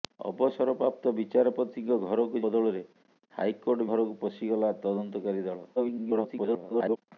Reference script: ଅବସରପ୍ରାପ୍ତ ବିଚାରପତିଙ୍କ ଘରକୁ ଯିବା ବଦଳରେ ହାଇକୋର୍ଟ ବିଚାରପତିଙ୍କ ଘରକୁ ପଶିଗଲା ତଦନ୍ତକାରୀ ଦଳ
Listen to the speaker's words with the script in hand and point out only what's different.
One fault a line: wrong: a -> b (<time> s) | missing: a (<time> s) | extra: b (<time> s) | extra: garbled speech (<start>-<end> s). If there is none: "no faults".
missing: ଯିବା (2.4 s)
missing: ବିଚାରପତିଙ୍କ (3.9 s)
extra: garbled speech (5.8-7.0 s)